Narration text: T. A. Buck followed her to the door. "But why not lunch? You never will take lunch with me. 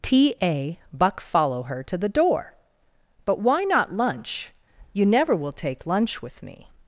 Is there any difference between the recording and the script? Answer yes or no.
yes